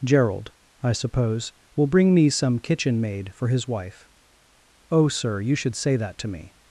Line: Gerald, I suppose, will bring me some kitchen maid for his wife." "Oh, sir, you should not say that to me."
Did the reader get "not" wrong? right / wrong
wrong